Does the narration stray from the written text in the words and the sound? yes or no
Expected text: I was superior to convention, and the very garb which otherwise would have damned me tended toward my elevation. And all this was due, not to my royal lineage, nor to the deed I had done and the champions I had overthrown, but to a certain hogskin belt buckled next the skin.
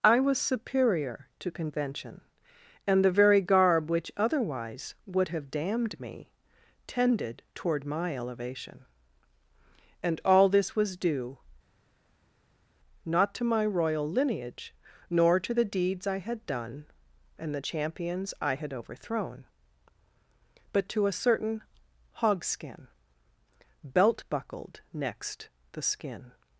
yes